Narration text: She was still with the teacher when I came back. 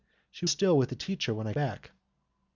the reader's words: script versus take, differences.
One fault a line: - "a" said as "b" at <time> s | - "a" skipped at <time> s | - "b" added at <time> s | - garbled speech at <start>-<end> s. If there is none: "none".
- "was" skipped at 0.5 s
- "came" skipped at 1.5 s